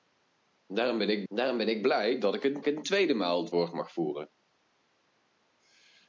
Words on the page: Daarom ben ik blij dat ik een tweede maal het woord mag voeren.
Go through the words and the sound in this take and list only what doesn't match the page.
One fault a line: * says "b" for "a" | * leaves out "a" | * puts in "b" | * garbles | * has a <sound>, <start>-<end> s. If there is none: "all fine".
* puts in "daarom ben ik"
* puts in "een"